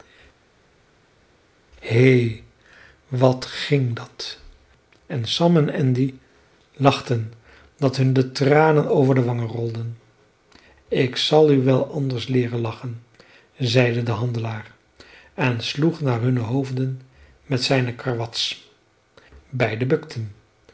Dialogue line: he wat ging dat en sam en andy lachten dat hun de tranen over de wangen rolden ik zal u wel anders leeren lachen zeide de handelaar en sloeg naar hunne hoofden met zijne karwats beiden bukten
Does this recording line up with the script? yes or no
yes